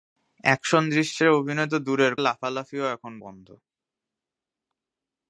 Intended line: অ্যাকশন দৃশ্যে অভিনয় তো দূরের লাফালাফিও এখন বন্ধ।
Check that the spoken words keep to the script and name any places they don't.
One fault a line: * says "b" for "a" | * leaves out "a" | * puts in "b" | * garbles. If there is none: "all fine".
all fine